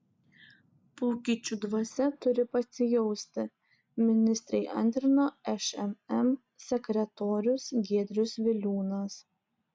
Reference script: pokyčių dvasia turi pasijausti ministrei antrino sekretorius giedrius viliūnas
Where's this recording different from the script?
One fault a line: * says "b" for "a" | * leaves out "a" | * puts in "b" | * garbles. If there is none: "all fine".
* puts in "šmm"